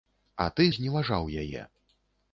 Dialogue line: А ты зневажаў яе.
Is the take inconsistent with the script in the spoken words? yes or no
no